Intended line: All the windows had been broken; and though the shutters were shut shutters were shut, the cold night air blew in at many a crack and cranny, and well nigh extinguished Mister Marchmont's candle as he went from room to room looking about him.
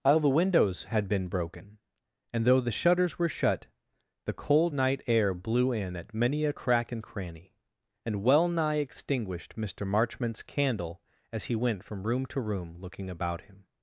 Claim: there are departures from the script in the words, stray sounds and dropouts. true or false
true